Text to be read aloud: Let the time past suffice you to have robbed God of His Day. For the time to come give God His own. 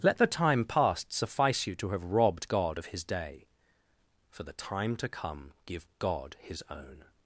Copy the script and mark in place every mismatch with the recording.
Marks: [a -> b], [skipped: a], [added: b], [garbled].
Let the time past suffice you to have robbed God of His Day. For the time to come give God His own.